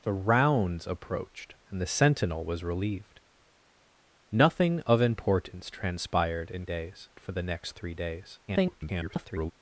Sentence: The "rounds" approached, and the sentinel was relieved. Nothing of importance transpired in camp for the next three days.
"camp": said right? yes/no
no